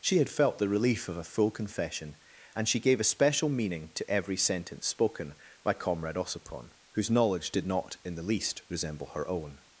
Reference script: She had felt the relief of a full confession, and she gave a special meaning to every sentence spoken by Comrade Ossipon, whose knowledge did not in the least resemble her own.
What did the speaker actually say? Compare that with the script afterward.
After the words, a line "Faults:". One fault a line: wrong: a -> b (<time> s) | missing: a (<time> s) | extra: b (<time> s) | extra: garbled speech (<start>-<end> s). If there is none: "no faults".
She had felt the relief of a full confession, and she gave a special meaning to every sentence spoken by Comrade Ossipon, whose knowledge did not in the least resemble her own.
Faults:
no faults